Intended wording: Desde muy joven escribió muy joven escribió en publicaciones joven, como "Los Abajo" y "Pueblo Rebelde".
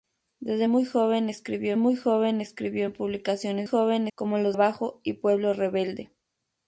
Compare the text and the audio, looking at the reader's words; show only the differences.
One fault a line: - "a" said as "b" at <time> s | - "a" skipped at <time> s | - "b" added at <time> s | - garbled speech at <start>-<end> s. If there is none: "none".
none